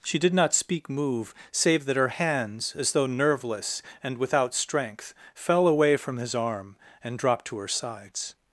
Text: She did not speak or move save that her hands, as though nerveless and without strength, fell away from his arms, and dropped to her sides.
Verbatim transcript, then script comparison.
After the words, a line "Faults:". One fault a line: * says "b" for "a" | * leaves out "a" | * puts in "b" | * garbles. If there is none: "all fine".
She did not speak move save that her hands, as though nerveless and without strength, fell away from his arm, and dropped to her sides.
Faults:
* leaves out "or"
* says "arm" for "arms"